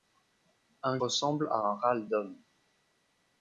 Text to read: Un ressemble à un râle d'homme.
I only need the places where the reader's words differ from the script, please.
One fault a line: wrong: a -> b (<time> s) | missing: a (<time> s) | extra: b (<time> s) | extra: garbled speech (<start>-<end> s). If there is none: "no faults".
no faults